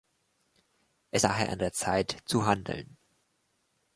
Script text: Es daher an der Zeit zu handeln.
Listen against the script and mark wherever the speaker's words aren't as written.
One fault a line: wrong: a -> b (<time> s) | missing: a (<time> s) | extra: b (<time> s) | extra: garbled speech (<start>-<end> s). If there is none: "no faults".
no faults